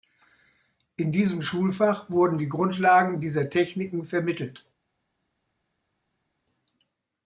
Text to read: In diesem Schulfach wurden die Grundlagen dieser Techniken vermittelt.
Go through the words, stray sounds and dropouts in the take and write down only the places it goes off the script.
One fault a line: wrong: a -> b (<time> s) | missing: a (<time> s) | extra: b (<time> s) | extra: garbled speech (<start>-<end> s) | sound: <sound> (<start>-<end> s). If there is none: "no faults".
no faults